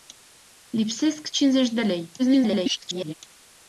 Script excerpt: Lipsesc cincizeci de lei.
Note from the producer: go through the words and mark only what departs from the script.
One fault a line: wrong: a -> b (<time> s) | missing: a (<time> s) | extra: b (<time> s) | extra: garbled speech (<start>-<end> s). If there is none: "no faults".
extra: garbled speech (2.2-3.1 s)